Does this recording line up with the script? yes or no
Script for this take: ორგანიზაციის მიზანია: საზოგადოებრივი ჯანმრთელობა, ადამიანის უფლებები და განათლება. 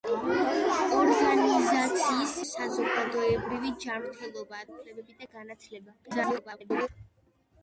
no